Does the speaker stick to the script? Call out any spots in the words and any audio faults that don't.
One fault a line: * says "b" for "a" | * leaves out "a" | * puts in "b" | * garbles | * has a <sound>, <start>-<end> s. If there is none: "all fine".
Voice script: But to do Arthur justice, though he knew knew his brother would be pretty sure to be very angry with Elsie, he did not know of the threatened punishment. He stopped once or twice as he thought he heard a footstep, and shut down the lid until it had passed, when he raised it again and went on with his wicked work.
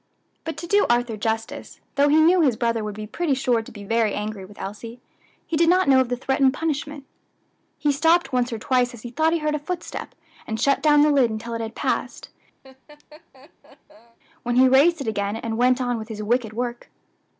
* leaves out "knew"
* has a laugh, 12.6-14.2 s